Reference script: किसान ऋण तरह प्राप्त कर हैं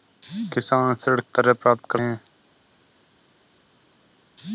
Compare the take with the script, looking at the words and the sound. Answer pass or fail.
pass